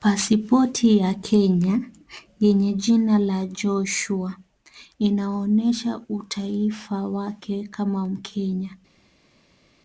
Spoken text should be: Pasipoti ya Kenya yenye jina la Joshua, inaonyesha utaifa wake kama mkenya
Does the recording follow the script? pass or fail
pass